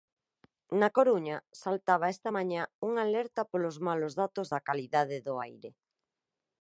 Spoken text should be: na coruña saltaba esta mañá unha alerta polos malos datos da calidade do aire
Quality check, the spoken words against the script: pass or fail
pass